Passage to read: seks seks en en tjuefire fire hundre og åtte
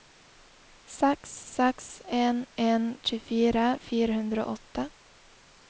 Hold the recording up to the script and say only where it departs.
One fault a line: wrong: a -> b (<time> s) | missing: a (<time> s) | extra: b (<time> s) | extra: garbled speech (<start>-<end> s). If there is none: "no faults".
no faults